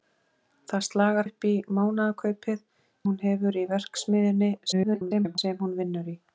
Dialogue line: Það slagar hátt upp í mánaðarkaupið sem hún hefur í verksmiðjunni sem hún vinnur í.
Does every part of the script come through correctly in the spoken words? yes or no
no